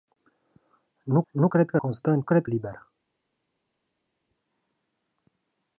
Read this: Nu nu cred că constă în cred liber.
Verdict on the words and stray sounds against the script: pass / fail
pass